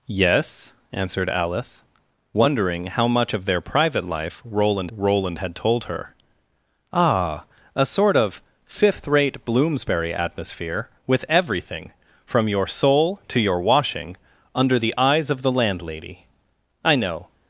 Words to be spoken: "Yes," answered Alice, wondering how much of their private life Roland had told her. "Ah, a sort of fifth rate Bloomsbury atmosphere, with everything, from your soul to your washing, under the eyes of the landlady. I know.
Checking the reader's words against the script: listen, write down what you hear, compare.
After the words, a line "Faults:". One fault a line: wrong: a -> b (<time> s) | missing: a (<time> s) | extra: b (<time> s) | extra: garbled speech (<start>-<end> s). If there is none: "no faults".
"Yes," answered Alice, wondering how much of their private life Roland Roland had told her. "Ah, a sort of fifth rate Bloomsbury atmosphere, with everything, from your soul to your washing, under the eyes of the landlady. I know.
Faults:
extra: Roland (4.9 s)